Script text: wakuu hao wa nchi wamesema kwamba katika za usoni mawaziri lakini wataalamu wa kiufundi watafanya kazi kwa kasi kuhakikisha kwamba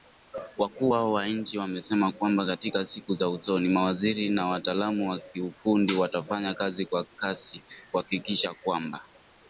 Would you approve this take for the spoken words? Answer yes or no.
no